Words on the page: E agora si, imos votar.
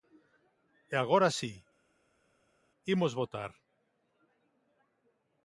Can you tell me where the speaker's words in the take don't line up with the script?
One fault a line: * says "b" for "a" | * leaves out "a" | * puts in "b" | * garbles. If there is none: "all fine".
all fine